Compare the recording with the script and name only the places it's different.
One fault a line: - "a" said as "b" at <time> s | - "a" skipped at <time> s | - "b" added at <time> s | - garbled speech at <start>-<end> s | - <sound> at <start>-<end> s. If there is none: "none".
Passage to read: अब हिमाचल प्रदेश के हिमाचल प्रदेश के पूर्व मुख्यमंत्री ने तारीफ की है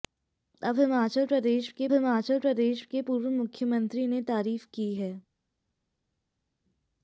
none